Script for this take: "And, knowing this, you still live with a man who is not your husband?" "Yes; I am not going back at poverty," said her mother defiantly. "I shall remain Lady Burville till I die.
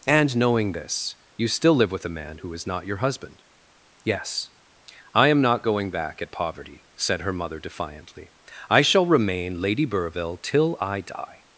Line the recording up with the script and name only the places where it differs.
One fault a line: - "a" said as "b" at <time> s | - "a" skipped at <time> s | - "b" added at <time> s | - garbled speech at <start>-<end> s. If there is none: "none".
none